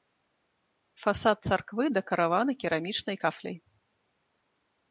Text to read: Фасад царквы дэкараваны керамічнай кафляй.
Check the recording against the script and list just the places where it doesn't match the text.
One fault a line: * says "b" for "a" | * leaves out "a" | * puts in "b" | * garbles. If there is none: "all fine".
all fine